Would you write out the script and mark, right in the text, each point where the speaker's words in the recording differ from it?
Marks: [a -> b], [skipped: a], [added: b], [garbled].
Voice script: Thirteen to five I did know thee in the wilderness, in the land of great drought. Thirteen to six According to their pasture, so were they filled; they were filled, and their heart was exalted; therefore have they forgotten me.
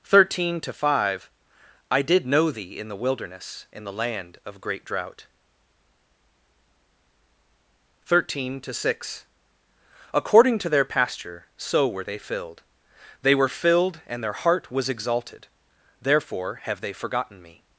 Thirteen to five I did know thee in the wilderness, in the land of great drought. Thirteen to six According to their pasture, so were they filled; they were filled, and their heart was exalted; therefore have they forgotten me.